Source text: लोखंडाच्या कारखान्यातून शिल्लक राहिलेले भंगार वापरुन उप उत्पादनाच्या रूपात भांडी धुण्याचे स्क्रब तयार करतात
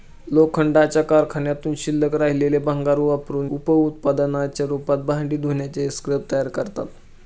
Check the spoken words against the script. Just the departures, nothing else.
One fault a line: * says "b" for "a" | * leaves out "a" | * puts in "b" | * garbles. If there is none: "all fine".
all fine